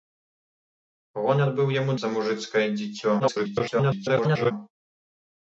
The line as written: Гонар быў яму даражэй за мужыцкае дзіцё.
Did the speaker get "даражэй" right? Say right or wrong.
wrong